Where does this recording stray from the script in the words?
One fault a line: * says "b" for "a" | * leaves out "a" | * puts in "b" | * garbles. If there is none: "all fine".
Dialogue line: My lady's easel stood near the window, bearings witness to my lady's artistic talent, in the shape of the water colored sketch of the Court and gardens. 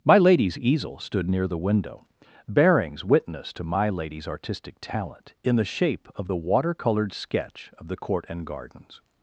all fine